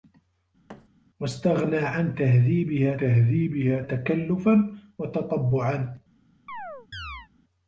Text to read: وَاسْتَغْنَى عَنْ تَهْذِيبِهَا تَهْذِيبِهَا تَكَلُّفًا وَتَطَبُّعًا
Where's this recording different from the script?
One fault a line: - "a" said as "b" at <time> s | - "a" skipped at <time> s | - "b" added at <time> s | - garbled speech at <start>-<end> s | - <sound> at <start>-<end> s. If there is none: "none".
- thud at 0.7-0.9 s
- chirp at 6.5-7.3 s